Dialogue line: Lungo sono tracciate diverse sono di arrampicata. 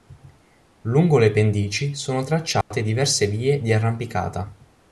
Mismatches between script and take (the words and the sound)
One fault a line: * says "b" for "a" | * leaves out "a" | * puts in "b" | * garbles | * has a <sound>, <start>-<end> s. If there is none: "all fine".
* puts in "le pendici"
* has a dropout, 2.6-2.7 s
* says "vie" for "sono"